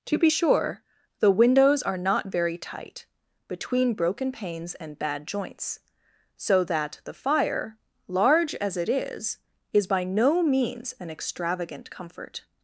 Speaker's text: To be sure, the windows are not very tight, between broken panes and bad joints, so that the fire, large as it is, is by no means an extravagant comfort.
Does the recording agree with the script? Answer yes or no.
yes